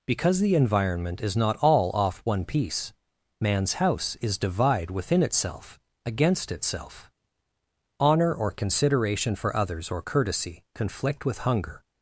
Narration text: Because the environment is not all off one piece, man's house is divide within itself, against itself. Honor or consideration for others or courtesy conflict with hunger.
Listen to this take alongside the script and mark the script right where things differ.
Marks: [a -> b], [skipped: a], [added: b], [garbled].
Because the environment is not all off one piece, man's house is divide within itself, against itself. Honor or consideration for others or courtesy conflict with hunger.